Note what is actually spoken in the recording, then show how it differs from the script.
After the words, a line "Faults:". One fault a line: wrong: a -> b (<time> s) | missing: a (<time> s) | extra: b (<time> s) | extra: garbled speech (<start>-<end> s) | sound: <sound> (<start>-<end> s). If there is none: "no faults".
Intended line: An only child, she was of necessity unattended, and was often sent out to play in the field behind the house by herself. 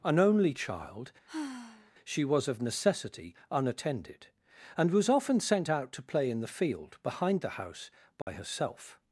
An only child, she was of necessity unattended, and was often sent out to play in the field behind the house by herself.
Faults:
sound: sigh (1.3-1.9 s)
sound: dropout (8.2-8.3 s)